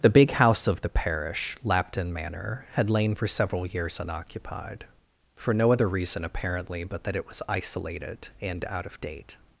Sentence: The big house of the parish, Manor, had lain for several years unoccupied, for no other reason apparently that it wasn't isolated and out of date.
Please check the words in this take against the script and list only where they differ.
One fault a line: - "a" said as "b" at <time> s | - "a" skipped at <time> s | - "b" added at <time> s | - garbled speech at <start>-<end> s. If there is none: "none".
- "Lapton" added at 1.6 s
- "but" added at 6.8 s
- "wasn't" said as "was" at 7.3 s